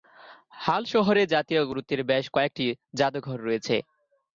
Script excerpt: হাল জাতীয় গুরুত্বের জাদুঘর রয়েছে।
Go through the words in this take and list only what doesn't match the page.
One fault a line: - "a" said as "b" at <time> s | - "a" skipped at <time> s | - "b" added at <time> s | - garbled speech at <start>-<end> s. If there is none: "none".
- "শহরে" added at 0.9 s
- "বেশ কয়েকটি" added at 2.1 s